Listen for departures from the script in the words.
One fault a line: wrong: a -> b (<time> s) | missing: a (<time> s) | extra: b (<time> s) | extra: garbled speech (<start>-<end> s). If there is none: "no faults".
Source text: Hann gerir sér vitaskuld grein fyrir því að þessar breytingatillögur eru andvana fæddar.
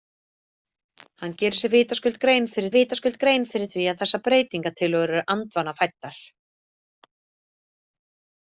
extra: vitaskuld grein fyrir (2.7 s)